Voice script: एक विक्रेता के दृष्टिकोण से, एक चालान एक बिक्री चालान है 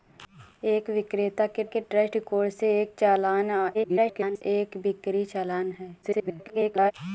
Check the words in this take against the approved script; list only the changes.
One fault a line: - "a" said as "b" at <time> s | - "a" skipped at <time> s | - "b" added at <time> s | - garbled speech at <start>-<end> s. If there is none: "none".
- "के" added at 1.6 s
- garbled speech at 3.7-4.4 s
- garbled speech at 6.0-6.9 s